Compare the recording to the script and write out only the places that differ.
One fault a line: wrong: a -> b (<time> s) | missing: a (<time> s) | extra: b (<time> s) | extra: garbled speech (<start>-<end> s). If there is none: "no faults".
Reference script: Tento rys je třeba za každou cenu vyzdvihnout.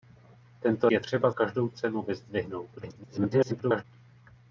missing: rys (0.9 s)
missing: za (1.3 s)
extra: garbled speech (2.8-3.8 s)